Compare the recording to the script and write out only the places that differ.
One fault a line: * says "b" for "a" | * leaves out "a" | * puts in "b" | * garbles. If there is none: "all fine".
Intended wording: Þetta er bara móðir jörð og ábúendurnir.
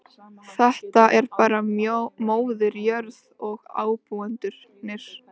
all fine